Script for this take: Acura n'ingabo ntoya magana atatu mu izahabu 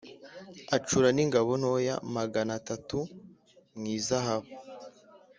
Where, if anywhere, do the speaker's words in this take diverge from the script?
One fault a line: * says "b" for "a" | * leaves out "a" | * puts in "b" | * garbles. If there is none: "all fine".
all fine